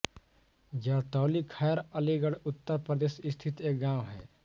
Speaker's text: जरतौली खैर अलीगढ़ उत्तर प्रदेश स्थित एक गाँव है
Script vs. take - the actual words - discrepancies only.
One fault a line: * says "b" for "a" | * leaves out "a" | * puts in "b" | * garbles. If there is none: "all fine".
all fine